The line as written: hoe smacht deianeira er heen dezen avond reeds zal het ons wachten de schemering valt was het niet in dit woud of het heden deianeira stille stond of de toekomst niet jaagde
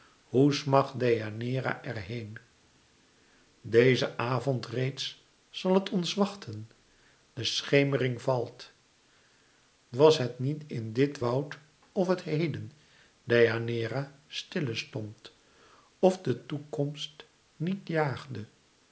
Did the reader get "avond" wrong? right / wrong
right